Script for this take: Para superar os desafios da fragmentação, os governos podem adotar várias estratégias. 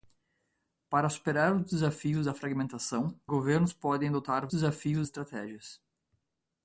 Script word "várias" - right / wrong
wrong